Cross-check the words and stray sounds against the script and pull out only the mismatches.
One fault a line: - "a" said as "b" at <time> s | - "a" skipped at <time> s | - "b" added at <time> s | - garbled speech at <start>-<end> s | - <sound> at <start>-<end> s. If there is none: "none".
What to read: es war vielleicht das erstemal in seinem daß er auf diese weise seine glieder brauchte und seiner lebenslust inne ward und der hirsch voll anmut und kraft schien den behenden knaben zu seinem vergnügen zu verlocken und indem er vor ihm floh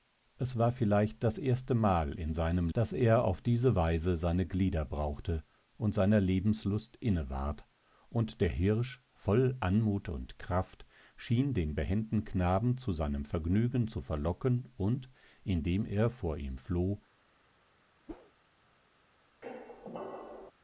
- whoosh at 18.1-18.3 s
- squeak at 19.4-20.5 s